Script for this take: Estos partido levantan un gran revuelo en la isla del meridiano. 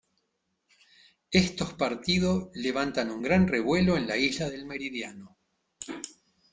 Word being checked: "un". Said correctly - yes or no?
yes